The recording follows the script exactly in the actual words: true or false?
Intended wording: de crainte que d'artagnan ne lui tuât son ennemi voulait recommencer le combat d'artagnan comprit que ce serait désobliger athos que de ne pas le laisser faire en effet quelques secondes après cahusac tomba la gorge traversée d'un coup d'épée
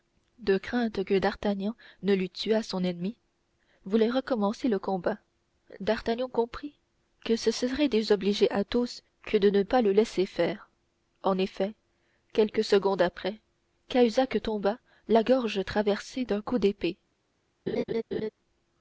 true